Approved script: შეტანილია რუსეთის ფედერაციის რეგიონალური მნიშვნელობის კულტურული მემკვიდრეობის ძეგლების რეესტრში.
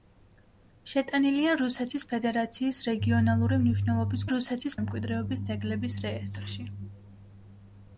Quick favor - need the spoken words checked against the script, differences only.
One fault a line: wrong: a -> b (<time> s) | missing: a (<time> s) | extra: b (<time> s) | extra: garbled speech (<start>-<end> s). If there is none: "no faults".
wrong: კულტურული -> რუსეთის (4.3 s)